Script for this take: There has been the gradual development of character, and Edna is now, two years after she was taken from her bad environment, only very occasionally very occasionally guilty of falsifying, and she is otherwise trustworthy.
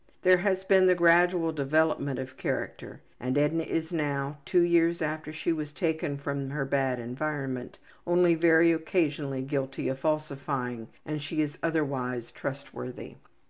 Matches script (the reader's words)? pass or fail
fail